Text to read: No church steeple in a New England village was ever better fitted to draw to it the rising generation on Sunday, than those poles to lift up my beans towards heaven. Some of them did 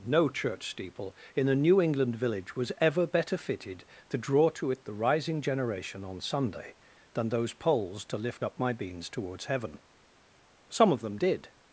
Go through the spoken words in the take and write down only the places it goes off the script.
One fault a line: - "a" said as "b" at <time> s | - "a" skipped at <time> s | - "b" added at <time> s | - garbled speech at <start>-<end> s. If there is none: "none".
none